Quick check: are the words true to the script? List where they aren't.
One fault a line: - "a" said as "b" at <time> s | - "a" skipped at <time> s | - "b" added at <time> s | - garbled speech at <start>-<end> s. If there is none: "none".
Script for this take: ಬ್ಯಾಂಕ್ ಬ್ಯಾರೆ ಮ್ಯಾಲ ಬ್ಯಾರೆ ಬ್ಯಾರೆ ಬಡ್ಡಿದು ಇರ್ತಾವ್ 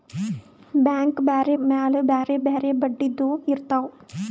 none